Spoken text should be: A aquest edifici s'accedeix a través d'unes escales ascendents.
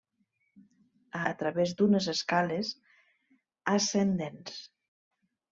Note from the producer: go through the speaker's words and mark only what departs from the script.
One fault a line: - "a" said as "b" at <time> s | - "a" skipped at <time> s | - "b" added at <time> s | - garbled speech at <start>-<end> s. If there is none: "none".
- "aquest edifici s'accedeix" skipped at 1.2 s